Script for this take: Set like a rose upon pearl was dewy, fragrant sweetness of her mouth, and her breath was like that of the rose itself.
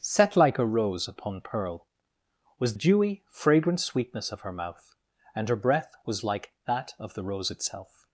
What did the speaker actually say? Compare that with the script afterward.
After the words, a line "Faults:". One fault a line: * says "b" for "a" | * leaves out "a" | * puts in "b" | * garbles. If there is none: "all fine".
Set like a rose upon pearl was dewy, fragrant sweetness of her mouth, and her breath was like that of the rose itself.
Faults:
all fine